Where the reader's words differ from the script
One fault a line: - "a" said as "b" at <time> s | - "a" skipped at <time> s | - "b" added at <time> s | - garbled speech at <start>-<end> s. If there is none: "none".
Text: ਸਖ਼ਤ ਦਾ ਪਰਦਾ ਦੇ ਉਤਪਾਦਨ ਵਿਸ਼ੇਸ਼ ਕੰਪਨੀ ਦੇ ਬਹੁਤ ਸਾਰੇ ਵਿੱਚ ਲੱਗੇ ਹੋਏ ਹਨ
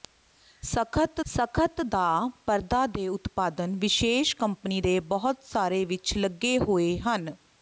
- "ਸਖ਼ਤ" added at 1.3 s